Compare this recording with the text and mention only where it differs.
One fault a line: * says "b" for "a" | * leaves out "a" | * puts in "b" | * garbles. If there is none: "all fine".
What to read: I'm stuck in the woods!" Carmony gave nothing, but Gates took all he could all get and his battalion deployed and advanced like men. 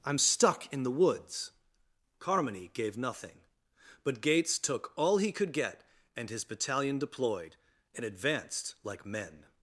* leaves out "all"